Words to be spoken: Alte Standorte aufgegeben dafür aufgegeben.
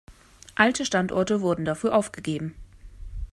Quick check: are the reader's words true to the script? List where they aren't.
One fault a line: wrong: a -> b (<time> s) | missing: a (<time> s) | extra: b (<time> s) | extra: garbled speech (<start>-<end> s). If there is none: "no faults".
wrong: aufgegeben -> wurden (1.4 s)